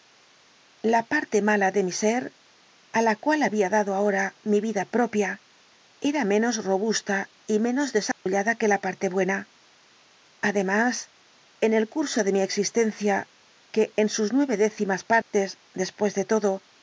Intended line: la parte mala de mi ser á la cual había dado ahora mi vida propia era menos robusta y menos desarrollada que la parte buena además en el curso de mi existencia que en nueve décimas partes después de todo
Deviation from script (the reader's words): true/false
true